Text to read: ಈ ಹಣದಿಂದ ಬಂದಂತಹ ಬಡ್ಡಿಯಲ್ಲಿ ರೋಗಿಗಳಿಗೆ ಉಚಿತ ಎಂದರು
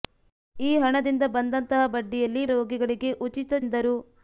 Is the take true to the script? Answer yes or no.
yes